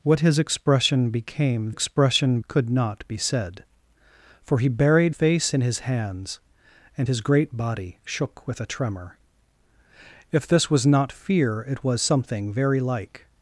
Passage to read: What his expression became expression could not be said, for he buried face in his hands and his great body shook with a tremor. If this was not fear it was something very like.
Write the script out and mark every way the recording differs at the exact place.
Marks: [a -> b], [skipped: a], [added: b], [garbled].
What his expression became expression could not be said, for he buried face in his hands and his great body shook with a tremor. If this was not fear it was something very like.